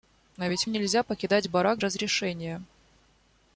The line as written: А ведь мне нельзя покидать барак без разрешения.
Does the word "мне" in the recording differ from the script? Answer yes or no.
yes